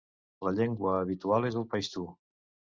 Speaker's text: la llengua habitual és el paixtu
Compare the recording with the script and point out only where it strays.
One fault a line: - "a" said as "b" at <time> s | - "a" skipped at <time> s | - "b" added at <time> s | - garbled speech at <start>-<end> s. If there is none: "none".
none